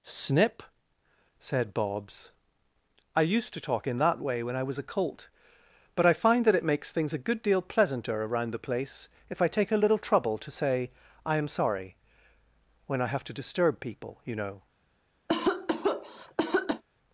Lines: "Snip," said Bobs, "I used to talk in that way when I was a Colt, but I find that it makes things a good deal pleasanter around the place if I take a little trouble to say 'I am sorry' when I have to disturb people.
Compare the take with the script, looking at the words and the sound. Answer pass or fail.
fail